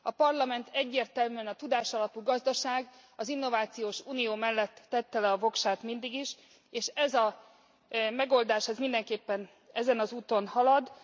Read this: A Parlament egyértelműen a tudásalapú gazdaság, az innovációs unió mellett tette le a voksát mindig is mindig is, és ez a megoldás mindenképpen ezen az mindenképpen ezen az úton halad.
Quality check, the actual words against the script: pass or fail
fail